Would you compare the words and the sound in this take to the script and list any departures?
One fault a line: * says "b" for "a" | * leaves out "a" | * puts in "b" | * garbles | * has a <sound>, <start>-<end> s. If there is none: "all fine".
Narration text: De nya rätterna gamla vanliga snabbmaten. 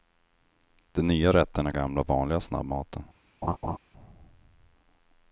* has a laugh, 3.4-3.8 s